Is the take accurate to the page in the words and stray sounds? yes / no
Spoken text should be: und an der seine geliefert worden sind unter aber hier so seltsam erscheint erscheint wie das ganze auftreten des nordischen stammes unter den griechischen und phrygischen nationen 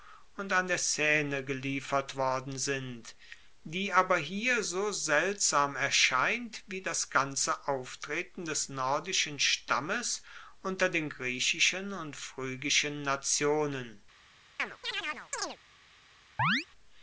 no